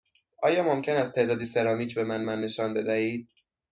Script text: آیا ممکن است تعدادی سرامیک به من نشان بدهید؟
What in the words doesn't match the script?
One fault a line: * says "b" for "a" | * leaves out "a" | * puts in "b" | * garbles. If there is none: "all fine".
* puts in "من"